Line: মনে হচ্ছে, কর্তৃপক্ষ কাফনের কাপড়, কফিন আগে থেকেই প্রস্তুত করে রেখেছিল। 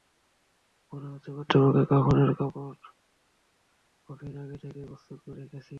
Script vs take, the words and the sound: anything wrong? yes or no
no